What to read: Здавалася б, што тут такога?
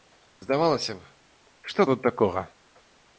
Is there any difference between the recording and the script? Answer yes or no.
no